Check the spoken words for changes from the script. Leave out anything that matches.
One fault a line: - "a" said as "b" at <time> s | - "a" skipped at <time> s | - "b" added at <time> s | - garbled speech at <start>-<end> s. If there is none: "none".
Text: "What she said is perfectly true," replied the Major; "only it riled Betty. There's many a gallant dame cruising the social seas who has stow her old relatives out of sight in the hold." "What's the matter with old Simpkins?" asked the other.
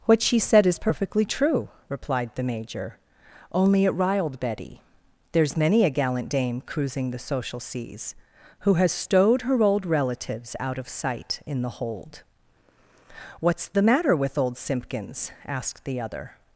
- "stow" said as "stowed" at 8.9 s